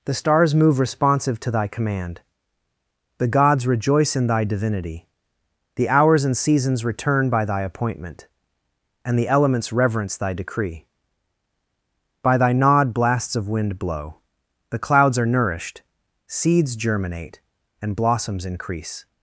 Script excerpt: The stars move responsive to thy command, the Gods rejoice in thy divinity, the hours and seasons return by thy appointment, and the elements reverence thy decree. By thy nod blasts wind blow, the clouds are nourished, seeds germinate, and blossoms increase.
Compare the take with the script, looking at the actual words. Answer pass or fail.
fail